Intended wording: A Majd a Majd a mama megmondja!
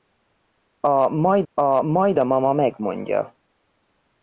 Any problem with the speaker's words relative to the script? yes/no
no